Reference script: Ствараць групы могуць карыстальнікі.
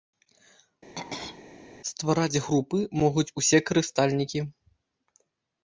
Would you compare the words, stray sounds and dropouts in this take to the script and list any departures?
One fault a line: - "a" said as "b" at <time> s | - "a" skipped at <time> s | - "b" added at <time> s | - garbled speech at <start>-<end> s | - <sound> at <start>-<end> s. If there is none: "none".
- throat clearing at 1.0-1.4 s
- "усе" added at 3.4 s